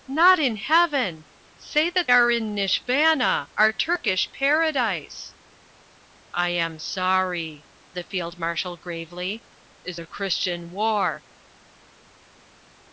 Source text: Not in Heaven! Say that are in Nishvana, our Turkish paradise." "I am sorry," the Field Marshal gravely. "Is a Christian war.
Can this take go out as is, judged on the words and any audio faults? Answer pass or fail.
pass